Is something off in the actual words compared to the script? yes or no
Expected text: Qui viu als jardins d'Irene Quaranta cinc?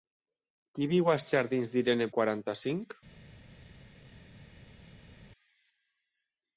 no